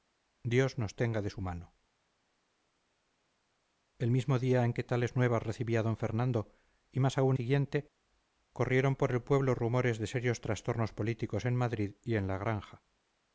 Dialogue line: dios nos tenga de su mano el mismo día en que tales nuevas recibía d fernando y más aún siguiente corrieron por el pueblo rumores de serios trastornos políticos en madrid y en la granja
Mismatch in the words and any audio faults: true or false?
false